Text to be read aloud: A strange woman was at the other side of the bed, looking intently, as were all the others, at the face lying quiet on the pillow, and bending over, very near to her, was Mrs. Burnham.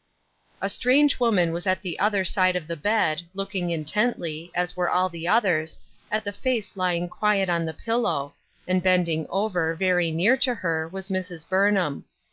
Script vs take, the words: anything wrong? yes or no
no